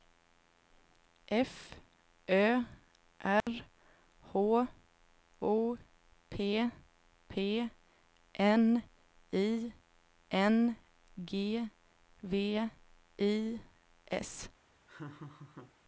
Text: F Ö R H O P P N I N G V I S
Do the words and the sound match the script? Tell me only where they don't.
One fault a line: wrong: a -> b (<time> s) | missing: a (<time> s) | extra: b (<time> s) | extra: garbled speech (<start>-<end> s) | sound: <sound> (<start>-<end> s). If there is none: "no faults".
sound: dropout (3.4-3.5 s)
sound: laugh (14.9-15.8 s)